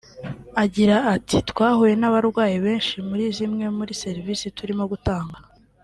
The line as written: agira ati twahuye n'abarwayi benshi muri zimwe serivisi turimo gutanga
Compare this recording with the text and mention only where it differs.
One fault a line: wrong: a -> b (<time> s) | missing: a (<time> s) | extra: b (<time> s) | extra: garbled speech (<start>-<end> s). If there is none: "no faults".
extra: muri (3.8 s)